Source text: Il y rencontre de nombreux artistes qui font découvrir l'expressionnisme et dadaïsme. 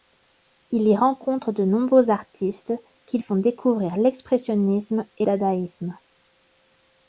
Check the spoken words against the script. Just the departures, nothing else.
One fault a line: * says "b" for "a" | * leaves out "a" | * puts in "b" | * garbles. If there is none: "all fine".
all fine